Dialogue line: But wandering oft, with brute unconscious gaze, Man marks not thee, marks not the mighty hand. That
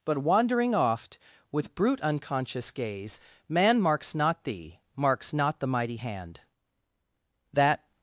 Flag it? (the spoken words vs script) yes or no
no